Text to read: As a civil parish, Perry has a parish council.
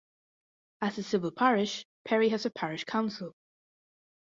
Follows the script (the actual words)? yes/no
yes